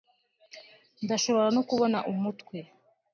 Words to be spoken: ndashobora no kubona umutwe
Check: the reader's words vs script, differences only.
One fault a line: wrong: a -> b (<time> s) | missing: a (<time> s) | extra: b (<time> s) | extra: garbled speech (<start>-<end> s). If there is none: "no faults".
no faults